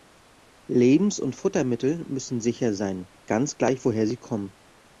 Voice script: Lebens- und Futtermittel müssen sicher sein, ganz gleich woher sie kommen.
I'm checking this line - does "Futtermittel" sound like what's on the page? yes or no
yes